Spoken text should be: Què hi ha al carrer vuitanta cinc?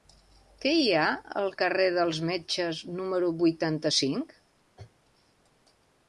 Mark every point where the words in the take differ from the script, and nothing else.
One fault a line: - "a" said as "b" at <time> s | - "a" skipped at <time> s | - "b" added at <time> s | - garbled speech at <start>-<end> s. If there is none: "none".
- "dels Metges número" added at 2.0 s